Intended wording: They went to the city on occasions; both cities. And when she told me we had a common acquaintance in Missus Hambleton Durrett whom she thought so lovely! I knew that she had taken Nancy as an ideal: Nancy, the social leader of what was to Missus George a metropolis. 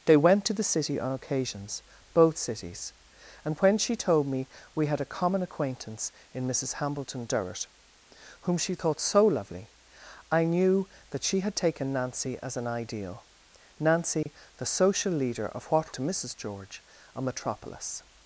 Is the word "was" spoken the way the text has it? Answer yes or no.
no